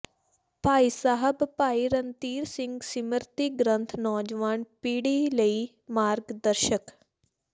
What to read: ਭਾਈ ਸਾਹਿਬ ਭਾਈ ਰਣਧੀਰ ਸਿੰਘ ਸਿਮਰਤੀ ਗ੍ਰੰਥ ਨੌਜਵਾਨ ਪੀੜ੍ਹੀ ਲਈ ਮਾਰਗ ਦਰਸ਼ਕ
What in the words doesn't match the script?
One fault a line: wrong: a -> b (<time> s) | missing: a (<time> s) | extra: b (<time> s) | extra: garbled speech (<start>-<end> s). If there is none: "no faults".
no faults